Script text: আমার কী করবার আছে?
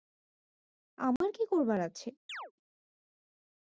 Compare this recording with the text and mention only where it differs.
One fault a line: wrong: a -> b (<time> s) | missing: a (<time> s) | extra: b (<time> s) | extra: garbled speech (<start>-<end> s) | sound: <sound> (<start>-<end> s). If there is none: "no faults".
sound: dropout (1.2-1.2 s)
sound: chirp (2.3-2.5 s)